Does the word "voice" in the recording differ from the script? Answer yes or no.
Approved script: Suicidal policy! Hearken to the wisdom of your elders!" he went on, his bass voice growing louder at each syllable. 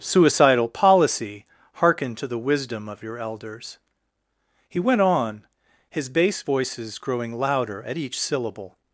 yes